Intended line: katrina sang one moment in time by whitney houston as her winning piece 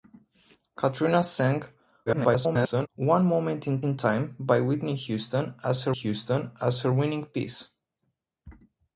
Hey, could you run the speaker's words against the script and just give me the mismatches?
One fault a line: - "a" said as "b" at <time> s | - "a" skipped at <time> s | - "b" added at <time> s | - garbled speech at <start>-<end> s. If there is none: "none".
- garbled speech at 2.1-2.9 s
- "in" added at 3.8 s
- "houston as her" added at 5.9 s